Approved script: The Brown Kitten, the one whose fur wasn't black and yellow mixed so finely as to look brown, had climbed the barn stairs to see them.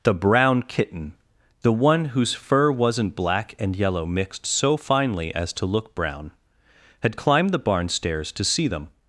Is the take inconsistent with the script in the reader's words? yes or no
no